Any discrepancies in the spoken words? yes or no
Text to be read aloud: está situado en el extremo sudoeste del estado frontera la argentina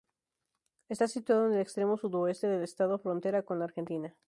yes